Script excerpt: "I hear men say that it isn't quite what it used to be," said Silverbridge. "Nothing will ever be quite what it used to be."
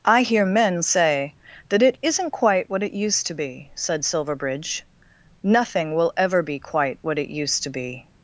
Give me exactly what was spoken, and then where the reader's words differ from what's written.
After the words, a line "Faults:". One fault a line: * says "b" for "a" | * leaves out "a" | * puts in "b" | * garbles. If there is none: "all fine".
"I hear men say that it isn't quite what it used to be," said Silverbridge. "Nothing will ever be quite what it used to be."
Faults:
all fine